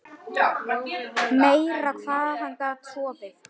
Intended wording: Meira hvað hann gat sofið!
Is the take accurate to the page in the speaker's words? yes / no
yes